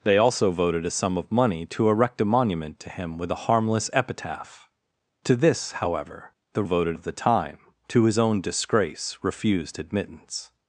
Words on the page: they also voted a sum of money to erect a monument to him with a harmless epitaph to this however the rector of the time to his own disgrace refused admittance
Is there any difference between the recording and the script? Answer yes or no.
yes